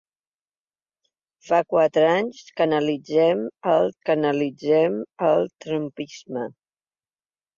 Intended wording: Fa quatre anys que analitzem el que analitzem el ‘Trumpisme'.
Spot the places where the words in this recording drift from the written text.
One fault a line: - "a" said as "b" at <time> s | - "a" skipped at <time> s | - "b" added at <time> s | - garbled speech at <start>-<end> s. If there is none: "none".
none